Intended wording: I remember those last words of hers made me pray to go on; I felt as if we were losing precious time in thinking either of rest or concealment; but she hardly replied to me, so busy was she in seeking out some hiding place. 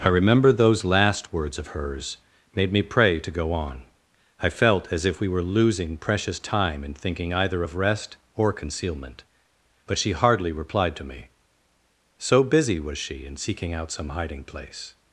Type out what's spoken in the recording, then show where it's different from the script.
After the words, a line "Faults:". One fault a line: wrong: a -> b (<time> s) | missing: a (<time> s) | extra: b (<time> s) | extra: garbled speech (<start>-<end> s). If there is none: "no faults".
I remember those last words of hers made me pray to go on; I felt as if we were losing precious time in thinking either of rest or concealment; but she hardly replied to me, so busy was she in seeking out some hiding place.
Faults:
no faults